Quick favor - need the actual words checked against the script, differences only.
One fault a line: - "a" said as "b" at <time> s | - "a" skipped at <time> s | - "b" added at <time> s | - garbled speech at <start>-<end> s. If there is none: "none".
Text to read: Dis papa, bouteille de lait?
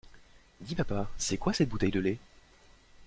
- "c'est quoi cette" added at 1.2 s